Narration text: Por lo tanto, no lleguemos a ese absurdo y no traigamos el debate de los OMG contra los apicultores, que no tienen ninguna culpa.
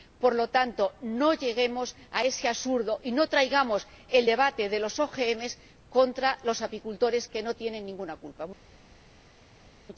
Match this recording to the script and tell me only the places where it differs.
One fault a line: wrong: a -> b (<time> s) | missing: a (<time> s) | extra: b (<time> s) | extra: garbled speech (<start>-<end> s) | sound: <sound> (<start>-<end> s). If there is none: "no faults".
no faults